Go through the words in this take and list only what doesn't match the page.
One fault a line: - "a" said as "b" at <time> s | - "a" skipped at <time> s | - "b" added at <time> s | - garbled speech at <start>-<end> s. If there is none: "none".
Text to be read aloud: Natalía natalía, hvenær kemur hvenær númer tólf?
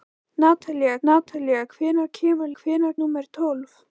none